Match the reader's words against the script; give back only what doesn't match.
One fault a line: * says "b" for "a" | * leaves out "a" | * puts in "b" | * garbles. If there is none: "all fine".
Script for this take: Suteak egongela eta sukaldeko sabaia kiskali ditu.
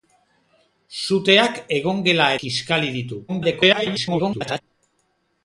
* leaves out "eta sukaldeko sabaia"
* garbles